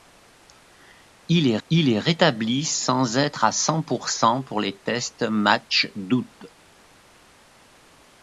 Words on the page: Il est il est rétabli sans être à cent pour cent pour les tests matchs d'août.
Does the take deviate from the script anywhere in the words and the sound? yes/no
no